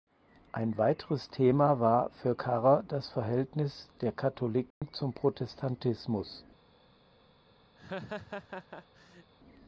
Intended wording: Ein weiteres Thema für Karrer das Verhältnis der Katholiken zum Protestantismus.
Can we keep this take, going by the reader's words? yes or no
no